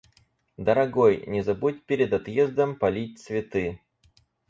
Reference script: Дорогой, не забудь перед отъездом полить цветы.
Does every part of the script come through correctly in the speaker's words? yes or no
yes